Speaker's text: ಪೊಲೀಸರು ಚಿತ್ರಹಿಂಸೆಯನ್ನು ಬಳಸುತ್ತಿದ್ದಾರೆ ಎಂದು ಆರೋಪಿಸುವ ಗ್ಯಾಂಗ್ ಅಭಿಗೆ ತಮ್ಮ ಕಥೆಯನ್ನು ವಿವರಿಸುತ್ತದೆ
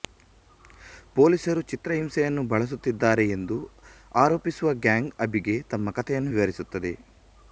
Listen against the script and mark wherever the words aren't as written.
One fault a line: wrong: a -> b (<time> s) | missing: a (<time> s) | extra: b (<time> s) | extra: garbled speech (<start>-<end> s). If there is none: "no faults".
no faults